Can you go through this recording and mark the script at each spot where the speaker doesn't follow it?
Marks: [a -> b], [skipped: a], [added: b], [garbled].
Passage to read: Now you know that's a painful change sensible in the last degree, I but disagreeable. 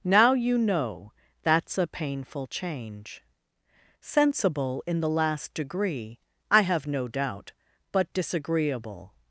Now you know that's a painful change sensible in the last degree, I [added: have no doubt] but disagreeable.